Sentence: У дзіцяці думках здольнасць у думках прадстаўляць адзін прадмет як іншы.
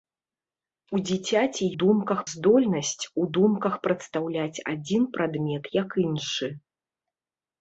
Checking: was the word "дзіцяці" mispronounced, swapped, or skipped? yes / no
no